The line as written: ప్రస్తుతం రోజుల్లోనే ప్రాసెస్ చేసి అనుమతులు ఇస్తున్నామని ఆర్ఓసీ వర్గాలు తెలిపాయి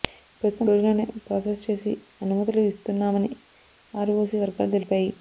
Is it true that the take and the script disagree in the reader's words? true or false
false